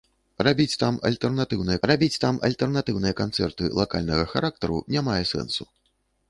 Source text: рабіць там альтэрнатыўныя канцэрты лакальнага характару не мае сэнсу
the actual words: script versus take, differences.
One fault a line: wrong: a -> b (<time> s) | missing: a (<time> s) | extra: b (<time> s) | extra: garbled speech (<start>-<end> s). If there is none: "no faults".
extra: рабіць там альтэрнатыўныя (1.9 s)